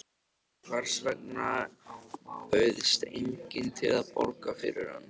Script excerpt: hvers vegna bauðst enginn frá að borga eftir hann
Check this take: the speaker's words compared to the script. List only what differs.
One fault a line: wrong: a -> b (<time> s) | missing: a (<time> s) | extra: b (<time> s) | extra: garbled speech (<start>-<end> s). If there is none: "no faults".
wrong: frá -> til (3.8 s)
wrong: eftir -> fyrir (4.6 s)